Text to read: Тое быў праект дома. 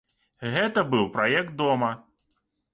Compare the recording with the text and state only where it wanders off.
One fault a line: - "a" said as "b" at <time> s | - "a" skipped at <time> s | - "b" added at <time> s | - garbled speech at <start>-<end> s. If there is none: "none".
- "Тое" said as "Гэта" at 0.6 s